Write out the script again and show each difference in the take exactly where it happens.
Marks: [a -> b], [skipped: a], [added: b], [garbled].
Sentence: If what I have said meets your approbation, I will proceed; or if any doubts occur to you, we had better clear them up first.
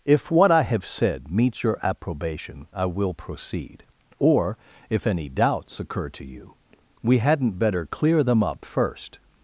If what I have said meets your approbation, I will proceed; or if any doubts occur to you, we [had -> hadn't] better clear them up first.